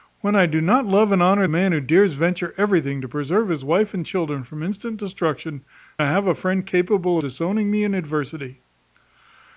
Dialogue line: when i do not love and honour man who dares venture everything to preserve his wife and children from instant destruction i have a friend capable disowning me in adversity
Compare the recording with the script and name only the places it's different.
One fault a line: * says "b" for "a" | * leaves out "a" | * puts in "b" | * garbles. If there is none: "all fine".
all fine